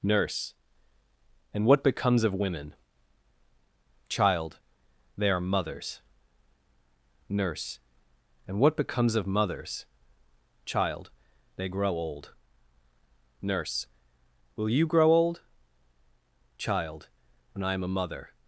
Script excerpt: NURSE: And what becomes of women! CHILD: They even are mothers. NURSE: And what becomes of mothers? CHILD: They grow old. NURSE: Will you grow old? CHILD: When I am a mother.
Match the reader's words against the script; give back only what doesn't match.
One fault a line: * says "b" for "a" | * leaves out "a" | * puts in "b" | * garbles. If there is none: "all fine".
* leaves out "even"